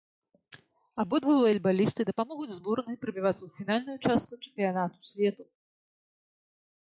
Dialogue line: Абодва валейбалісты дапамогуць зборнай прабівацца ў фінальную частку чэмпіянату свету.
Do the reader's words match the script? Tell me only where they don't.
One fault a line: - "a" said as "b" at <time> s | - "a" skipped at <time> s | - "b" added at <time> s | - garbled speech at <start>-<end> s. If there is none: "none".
none